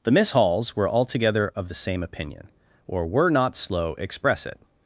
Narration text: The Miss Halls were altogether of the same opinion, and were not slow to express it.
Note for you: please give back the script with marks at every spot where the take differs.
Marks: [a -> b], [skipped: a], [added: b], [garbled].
The Miss Halls were altogether of the same opinion, [and -> or] were not slow [skipped: to] express it.